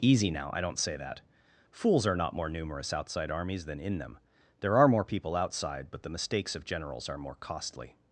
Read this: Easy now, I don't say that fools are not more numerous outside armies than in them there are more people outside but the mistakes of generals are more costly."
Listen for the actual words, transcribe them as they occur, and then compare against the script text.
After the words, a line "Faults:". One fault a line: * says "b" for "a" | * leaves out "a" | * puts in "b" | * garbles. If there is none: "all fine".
Easy now, I don't say that fools are not more numerous outside armies than in them there are more people outside but the mistakes of generals are more costly."
Faults:
all fine